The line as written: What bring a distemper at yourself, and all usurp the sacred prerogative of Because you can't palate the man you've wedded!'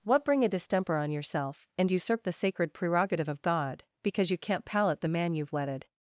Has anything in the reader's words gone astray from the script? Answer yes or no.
yes